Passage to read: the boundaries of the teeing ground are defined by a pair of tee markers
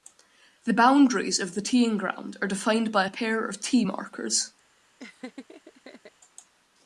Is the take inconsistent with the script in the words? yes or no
no